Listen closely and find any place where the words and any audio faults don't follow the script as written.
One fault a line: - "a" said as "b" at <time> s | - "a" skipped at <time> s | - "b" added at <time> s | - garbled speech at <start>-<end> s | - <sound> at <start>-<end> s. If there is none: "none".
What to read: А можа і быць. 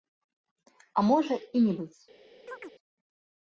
- "не" added at 1.7 s
- chirp at 2.5-2.7 s